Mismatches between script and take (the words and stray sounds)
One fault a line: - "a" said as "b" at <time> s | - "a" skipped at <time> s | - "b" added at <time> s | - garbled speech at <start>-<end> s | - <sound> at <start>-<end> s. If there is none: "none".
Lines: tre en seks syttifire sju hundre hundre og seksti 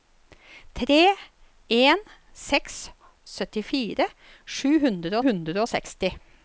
none